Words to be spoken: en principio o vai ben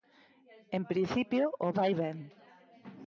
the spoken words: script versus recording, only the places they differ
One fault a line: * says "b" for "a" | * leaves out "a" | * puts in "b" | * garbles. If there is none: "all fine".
all fine